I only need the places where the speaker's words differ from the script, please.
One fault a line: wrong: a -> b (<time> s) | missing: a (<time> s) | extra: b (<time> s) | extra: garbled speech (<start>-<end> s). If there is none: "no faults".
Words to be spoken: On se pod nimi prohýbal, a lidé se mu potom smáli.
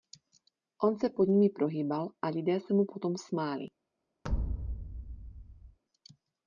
no faults